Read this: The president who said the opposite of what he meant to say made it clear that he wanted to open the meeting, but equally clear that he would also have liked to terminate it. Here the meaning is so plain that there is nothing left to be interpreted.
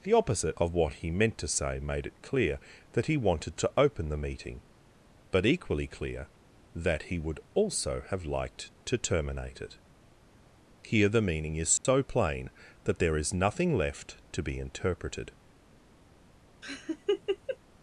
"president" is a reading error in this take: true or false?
true